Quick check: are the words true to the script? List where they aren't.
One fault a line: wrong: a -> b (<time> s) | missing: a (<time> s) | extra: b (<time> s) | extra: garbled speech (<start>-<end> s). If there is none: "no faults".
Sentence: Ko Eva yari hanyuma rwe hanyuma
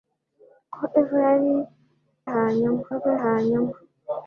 no faults